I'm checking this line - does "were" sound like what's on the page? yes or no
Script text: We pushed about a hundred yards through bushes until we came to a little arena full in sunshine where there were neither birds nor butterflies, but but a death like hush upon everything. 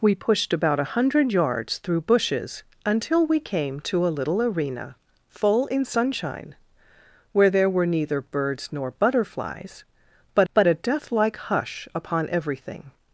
yes